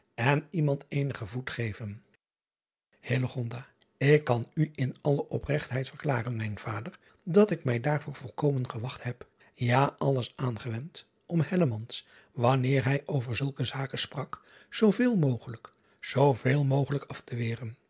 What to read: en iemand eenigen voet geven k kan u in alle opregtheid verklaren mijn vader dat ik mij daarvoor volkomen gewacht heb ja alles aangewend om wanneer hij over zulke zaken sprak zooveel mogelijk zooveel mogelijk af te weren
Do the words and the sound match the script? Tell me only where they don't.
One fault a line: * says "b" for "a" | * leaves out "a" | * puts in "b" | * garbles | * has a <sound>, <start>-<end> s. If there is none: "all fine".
all fine